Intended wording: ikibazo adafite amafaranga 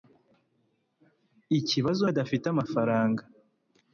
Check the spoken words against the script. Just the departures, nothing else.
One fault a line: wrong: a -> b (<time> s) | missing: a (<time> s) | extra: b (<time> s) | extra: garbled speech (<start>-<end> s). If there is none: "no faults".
no faults